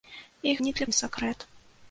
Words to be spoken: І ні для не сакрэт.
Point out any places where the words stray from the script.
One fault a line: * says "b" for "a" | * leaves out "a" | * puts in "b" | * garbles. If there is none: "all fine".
all fine